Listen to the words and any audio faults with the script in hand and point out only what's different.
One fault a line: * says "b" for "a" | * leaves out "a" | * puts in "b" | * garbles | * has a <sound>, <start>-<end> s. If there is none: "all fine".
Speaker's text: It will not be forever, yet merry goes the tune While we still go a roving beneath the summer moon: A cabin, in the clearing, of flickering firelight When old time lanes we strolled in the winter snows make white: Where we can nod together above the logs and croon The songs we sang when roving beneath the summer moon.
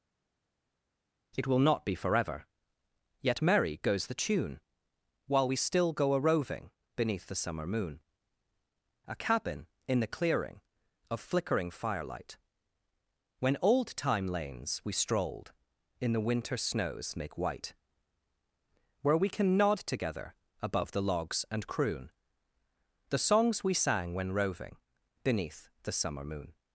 all fine